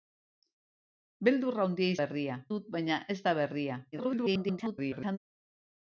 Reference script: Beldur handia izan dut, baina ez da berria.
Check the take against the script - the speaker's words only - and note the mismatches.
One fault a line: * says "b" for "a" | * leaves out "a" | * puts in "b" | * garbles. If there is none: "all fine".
* says "berria" for "izan"
* garbles